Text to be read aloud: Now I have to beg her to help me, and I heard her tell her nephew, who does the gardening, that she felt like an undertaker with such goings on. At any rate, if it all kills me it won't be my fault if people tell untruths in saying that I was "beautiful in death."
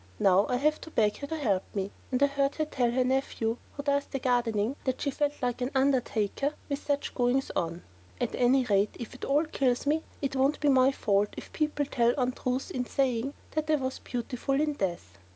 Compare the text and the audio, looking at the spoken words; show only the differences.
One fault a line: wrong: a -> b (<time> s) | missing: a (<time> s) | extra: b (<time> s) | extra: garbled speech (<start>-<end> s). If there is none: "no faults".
no faults